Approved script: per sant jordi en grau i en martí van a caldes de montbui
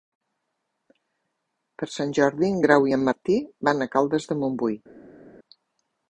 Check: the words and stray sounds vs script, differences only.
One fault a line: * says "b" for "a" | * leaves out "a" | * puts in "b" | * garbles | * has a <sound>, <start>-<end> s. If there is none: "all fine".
all fine